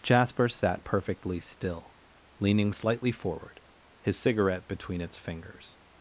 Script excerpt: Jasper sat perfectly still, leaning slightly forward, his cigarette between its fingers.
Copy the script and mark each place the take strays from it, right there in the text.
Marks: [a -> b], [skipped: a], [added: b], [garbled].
Jasper sat perfectly still, leaning slightly forward, his cigarette between its fingers.